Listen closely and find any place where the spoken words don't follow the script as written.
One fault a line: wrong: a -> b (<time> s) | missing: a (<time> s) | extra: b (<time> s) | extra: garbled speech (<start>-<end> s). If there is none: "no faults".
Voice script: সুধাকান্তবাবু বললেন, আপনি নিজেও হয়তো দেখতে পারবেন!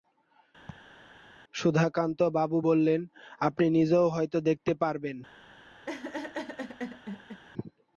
no faults